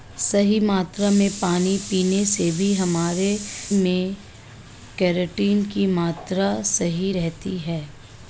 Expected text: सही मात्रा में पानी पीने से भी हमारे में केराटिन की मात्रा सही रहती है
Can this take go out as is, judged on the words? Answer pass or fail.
pass